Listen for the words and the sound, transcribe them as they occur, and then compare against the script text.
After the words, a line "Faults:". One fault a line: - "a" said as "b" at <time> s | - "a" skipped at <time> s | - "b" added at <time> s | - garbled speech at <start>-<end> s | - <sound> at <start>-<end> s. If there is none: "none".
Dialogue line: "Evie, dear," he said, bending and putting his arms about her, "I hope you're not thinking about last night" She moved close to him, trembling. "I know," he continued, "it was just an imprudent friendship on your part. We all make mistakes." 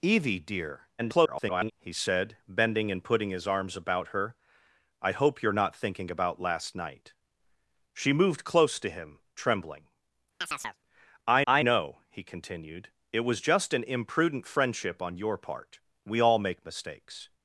"Evie, dear," [garbled] he said, bending and putting his arms about her, "I hope you're not thinking about last night" She moved close to him, trembling. "I I know," he continued, "it was just an imprudent friendship on your part. We all make mistakes."
Faults:
- garbled speech at 1.0-1.7 s
- chirp at 10.4-10.8 s
- "I" added at 11.5 s